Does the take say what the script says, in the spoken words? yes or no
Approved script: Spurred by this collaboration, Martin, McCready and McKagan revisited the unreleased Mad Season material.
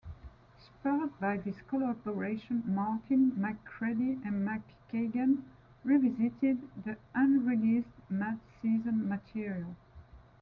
yes